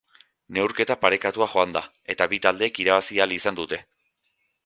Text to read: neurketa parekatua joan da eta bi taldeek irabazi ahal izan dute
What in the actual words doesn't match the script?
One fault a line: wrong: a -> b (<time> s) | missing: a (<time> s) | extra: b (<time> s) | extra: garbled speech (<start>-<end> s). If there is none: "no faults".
no faults